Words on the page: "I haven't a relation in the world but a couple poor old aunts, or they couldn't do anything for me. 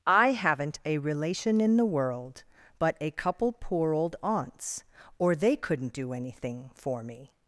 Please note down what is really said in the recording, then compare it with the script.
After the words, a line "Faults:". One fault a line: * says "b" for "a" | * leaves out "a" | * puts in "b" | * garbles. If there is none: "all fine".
"I haven't a relation in the world but a couple poor old aunts, or they couldn't do anything for me.
Faults:
all fine